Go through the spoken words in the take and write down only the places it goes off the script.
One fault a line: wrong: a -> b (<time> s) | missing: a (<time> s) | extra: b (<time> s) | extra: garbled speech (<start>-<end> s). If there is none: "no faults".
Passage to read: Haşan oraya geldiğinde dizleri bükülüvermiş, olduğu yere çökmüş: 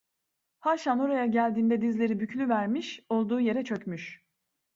no faults